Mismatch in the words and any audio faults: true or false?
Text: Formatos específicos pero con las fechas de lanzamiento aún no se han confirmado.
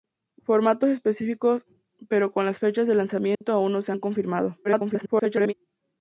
true